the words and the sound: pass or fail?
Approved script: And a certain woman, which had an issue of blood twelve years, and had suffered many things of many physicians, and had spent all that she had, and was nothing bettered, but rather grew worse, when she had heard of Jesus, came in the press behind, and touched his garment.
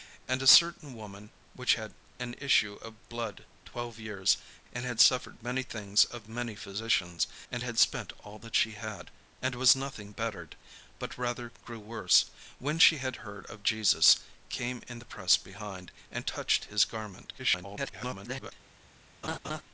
fail